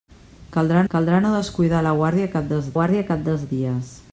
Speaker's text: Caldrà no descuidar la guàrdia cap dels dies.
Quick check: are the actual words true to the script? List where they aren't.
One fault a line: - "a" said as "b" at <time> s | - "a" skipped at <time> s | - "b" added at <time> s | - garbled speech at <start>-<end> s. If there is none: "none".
- "caldrà" added at 0.9 s
- "guàrdia cap dels" added at 2.8 s